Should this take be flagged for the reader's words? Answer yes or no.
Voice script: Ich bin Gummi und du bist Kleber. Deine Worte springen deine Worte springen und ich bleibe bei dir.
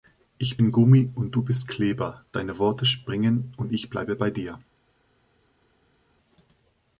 yes